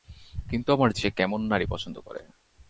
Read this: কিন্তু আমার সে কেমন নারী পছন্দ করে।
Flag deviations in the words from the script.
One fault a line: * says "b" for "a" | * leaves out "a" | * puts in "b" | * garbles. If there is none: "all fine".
all fine